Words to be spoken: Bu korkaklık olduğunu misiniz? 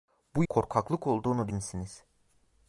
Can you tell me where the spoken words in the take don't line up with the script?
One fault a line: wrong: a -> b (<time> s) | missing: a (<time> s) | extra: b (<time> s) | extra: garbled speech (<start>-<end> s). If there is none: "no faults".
no faults